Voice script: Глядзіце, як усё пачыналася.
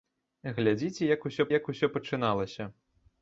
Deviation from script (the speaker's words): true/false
true